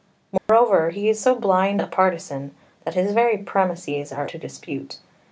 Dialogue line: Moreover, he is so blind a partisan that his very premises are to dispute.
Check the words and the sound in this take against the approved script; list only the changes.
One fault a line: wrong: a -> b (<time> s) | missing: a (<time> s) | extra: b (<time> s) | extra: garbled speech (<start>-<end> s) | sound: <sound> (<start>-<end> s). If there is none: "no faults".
sound: dropout (0.4-0.5 s)